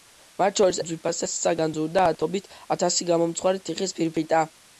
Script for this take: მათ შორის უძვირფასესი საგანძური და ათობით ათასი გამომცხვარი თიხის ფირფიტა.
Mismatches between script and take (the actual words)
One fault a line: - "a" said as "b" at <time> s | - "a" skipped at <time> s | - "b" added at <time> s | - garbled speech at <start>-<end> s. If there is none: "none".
none